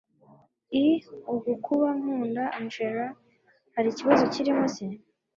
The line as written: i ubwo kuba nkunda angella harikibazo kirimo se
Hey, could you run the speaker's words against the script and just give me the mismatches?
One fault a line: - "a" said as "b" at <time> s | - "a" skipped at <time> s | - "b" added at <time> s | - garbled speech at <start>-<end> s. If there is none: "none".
none